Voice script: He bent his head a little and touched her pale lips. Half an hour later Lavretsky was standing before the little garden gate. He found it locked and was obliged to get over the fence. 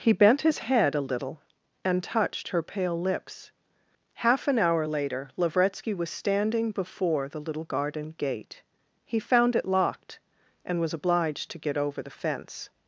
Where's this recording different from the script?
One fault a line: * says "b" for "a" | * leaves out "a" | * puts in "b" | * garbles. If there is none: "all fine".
all fine